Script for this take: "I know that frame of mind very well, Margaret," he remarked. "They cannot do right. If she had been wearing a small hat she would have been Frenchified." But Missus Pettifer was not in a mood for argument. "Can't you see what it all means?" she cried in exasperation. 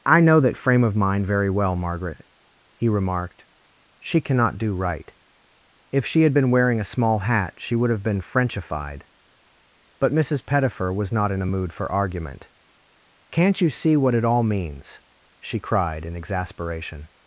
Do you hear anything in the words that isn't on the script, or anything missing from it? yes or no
yes